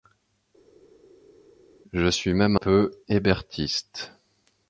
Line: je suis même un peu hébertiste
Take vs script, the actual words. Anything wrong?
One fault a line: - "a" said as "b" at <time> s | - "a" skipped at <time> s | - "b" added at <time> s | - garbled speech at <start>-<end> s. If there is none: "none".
- "un" skipped at 2.6 s